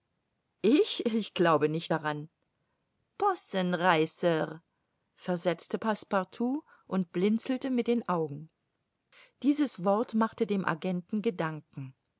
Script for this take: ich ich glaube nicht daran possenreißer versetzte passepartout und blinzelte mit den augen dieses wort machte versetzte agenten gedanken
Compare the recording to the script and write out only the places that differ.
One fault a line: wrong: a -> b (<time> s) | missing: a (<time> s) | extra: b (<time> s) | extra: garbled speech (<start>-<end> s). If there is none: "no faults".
wrong: versetzte -> dem (10.5 s)